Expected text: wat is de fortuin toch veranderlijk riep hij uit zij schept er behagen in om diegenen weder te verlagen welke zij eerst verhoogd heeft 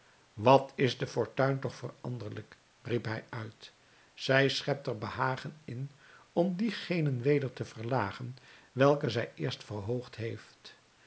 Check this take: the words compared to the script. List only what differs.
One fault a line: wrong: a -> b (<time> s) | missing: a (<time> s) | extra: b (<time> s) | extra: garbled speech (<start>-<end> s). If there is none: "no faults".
no faults